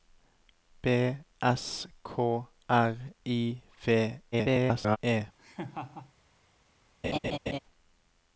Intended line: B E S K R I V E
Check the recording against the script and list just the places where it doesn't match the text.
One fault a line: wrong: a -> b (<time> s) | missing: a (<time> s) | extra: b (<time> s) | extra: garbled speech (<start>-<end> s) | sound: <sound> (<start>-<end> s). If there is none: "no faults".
missing: E (1.1 s)
extra: garbled speech (4.3-5.0 s)
sound: laugh (5.4-6.1 s)
sound: laugh (7.0-7.6 s)